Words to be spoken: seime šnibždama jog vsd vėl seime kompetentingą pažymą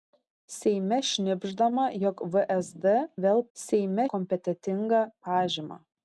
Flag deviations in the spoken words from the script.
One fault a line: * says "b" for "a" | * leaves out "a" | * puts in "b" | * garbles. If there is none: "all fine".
all fine